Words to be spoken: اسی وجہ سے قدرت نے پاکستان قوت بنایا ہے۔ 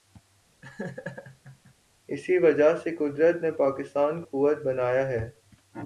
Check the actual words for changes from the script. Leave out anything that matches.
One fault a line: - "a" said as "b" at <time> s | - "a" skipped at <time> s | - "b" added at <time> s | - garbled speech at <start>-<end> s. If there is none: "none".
none